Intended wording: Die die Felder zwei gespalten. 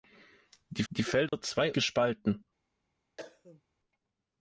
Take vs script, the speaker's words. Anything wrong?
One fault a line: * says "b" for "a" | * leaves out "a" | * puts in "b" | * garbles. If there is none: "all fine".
all fine